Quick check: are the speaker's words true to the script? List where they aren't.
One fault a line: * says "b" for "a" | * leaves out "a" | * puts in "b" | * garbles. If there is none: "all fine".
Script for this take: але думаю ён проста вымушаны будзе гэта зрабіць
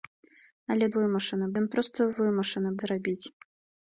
* says "вымушаны" for "думаю"
* leaves out "будзе гэта"